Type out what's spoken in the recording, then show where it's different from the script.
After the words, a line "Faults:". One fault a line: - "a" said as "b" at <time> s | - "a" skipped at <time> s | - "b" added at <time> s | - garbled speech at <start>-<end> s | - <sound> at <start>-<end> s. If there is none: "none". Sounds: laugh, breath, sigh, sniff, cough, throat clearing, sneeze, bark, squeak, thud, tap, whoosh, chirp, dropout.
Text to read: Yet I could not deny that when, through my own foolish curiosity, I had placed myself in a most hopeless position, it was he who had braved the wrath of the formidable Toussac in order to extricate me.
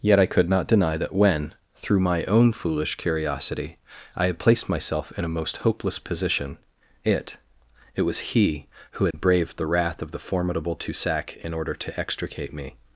Yet I could not deny that when, through my own foolish curiosity, I had placed myself in a most hopeless position, it it was he who had braved the wrath of the formidable Toussac in order to extricate me.
Faults:
- "it" added at 8.0 s
- dropout at 9.1-9.1 s